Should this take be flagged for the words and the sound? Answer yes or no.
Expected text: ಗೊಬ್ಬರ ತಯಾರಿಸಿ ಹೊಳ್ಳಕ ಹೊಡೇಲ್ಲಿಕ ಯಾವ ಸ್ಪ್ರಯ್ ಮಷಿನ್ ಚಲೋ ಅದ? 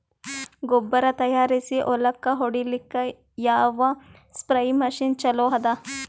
no